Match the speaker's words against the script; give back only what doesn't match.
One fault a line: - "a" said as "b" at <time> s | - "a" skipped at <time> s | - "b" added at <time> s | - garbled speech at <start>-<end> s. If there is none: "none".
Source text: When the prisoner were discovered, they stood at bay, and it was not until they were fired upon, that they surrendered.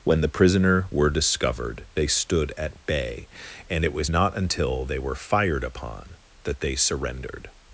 none